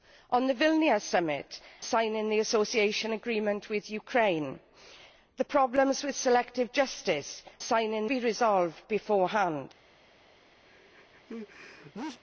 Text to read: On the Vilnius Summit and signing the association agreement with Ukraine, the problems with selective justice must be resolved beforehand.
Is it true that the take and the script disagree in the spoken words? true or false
true